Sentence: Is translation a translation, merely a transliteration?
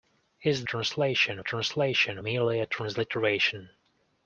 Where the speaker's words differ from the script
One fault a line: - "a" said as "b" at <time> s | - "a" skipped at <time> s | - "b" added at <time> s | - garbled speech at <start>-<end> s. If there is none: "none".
none